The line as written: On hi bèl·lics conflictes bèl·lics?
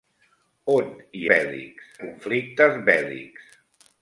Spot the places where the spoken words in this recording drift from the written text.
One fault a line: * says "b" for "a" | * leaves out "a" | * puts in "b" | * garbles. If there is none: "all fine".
all fine